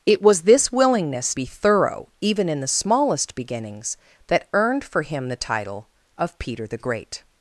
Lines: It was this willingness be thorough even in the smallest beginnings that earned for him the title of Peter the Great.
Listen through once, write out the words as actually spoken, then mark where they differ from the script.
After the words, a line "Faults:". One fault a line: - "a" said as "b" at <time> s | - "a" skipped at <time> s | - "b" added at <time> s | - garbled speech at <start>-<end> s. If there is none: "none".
It was this willingness be thorough even in the smallest beginnings that earned for him the title of Peter the Great.
Faults:
none